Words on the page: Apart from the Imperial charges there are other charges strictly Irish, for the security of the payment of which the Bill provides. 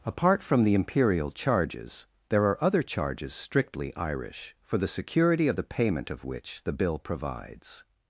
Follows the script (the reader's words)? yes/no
yes